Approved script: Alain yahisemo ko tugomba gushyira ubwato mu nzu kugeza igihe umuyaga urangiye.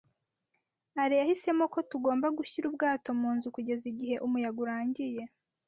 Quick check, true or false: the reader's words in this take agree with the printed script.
true